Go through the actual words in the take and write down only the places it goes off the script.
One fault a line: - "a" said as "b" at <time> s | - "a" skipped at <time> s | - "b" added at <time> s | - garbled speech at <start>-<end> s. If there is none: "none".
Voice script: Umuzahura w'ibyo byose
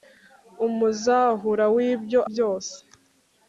none